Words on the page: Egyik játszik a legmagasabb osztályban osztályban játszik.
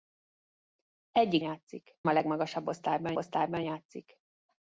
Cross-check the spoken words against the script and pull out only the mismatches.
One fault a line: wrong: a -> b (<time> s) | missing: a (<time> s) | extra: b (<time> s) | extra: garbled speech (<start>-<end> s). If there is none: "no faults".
no faults